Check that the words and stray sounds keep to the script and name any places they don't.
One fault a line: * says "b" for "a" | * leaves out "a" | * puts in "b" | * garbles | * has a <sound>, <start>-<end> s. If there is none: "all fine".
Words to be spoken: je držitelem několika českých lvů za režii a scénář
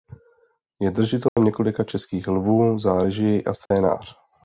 * has a dropout, 1.3-1.4 s
* has a dropout, 3.7-3.7 s